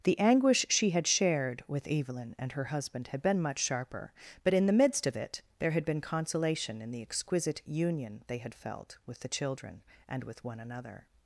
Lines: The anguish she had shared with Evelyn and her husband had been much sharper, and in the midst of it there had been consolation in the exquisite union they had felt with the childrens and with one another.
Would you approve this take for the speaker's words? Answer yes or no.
no